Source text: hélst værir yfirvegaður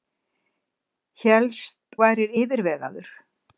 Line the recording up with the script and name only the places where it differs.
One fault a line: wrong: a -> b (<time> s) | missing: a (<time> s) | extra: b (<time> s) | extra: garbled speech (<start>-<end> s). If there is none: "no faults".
no faults